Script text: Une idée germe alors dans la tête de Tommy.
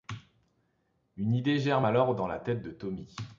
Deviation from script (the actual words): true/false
false